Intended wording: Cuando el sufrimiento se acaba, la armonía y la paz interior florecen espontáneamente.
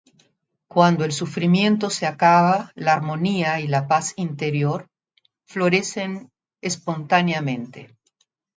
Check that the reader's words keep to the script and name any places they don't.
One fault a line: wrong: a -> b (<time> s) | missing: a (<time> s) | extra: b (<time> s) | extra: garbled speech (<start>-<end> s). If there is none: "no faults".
no faults